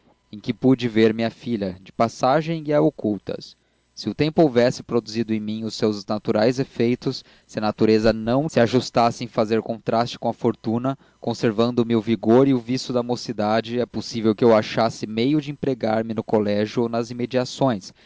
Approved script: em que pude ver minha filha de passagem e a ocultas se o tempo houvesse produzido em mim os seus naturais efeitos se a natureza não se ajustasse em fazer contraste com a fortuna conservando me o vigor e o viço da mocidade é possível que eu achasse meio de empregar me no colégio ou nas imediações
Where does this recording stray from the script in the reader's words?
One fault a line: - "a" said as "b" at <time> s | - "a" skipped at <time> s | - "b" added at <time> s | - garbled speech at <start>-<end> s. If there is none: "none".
none